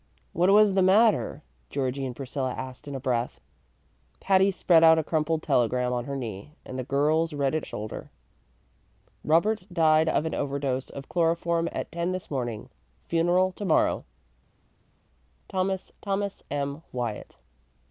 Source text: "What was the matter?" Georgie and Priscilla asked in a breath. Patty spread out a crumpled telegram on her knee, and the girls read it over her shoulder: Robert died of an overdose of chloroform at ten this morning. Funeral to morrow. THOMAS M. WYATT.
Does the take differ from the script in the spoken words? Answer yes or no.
yes